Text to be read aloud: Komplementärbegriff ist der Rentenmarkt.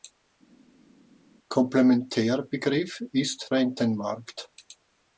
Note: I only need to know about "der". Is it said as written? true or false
false